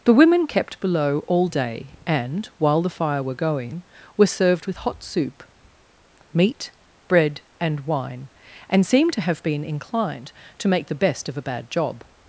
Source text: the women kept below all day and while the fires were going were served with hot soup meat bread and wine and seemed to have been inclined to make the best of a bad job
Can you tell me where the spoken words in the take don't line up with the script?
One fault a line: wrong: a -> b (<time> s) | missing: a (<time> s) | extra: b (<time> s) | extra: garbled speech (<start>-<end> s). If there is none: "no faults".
wrong: fires -> fire (2.9 s)